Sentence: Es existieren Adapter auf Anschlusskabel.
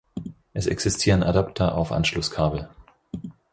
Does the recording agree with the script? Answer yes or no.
yes